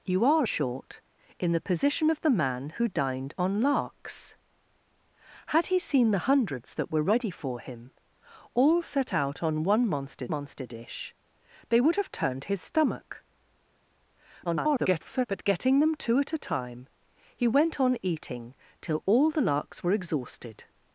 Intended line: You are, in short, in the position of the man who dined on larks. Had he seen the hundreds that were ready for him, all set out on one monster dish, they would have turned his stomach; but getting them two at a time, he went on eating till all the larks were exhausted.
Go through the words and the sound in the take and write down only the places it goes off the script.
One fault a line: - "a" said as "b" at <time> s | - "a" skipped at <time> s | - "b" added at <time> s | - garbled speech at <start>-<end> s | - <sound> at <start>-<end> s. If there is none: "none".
- "in" skipped at 0.5 s
- "monster" added at 10.3 s
- garbled speech at 14.4-15.3 s